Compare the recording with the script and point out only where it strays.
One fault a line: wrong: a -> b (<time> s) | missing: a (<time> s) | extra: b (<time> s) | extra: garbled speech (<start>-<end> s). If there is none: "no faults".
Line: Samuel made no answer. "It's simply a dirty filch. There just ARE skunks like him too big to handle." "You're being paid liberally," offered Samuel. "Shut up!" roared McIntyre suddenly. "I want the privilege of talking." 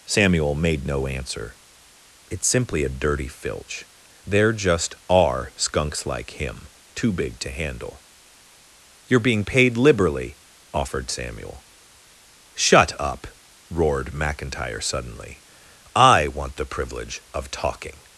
no faults